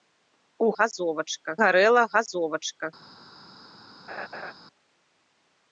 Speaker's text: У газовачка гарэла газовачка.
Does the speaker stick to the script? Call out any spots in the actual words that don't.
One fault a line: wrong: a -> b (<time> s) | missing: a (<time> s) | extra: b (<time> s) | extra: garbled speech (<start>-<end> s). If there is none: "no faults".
no faults